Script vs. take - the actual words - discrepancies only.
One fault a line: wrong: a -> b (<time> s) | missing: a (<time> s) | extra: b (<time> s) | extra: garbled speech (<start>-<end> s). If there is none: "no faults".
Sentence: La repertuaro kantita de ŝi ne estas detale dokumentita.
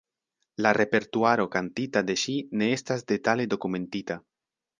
no faults